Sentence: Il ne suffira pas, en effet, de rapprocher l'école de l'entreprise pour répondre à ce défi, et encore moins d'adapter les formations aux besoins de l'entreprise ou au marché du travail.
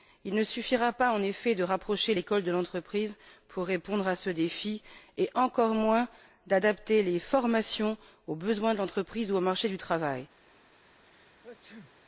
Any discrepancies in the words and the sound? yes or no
yes